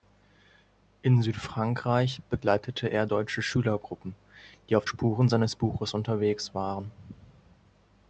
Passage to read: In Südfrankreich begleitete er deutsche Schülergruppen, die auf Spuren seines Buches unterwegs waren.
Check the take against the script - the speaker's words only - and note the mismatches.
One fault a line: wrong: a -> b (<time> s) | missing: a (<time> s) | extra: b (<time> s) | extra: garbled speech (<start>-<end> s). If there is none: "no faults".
no faults